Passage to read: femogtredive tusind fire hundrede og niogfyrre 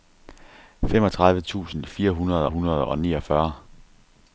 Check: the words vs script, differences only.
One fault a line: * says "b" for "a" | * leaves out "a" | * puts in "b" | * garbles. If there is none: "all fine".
* puts in "hundrede"